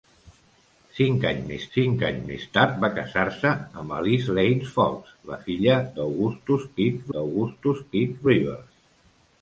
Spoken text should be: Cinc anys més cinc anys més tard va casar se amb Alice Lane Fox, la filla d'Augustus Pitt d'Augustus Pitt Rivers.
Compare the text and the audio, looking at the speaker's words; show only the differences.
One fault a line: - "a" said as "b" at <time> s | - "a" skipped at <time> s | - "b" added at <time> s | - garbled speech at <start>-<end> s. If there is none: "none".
none